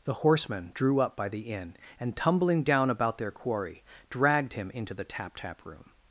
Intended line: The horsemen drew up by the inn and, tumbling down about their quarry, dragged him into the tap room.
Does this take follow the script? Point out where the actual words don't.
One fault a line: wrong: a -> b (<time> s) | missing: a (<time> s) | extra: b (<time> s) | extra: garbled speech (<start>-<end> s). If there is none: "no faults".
extra: tap (5.3 s)